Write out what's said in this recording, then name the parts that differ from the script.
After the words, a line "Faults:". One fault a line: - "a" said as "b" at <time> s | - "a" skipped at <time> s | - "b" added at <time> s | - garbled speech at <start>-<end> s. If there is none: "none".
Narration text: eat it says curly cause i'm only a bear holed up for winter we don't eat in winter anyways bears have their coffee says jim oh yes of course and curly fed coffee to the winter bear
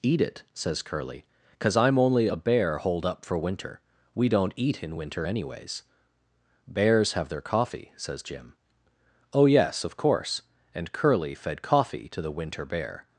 eat it says curly cause i'm only a bear holed up for winter we don't eat in winter anyways bears have their coffee says jim oh yes of course and curly fed coffee to the winter bear
Faults:
none